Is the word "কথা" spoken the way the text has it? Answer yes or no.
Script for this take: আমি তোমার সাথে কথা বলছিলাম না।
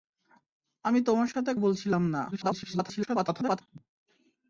no